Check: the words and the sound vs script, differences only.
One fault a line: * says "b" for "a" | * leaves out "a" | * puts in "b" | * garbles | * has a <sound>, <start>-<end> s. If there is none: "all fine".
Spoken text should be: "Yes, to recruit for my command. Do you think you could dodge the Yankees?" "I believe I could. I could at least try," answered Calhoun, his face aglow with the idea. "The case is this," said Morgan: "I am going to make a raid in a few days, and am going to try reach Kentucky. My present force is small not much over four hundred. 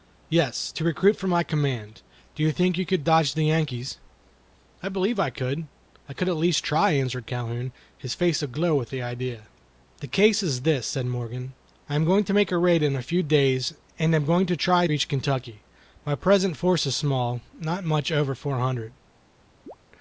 * has a chirp, 19.7-19.8 s